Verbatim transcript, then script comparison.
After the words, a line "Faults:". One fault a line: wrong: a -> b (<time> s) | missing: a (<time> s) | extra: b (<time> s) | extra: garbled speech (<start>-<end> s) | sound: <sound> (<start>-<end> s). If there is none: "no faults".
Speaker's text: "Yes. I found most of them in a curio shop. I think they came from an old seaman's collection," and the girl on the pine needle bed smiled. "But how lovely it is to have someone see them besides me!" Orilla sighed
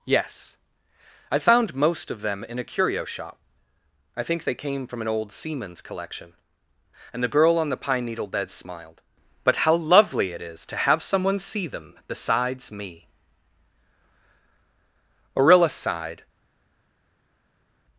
"Yes. I found most of them in a curio shop. I think they came from an old seaman's collection," and the girl on the pine needle bed smiled. "But how lovely it is to have someone see them besides me!" Orilla sighed
Faults:
no faults